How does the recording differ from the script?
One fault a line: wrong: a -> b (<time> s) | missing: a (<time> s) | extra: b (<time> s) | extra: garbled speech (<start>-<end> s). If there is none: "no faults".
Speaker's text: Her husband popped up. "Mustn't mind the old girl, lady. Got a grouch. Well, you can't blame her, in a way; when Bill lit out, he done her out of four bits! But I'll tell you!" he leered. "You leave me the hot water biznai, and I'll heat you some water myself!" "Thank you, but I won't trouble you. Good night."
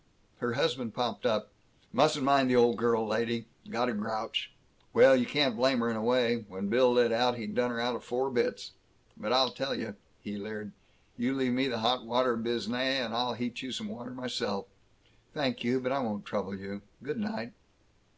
no faults